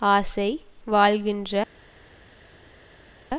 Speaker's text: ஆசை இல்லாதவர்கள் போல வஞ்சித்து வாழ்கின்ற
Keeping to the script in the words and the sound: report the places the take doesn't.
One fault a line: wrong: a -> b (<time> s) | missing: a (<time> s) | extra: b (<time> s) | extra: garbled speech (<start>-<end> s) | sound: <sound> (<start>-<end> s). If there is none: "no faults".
missing: இல்லாதவர்கள் போல வஞ்சித்து (0.5 s)